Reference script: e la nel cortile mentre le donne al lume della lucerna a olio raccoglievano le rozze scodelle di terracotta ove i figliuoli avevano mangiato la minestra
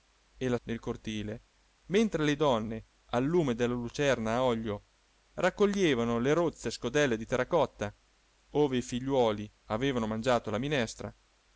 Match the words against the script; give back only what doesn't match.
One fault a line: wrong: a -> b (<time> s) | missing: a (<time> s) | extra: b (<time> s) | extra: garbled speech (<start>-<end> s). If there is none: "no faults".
no faults